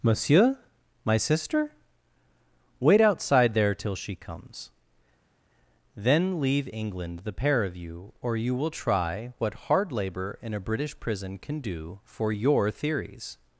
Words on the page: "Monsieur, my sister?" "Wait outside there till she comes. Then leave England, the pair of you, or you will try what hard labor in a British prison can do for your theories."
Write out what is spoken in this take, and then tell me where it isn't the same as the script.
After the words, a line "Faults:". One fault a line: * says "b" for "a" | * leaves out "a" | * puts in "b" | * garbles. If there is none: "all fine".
"Monsieur, my sister?" "Wait outside there till she comes. Then leave England, the pair of you, or you will try what hard labor in a British prison can do for your theories."
Faults:
all fine